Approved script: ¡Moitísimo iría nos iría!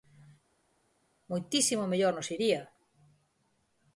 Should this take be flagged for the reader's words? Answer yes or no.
yes